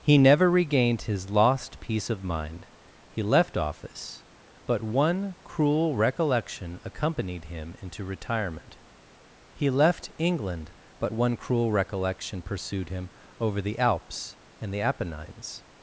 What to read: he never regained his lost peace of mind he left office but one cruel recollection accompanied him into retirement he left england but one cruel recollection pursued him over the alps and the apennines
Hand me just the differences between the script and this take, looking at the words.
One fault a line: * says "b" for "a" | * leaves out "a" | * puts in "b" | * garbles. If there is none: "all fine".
all fine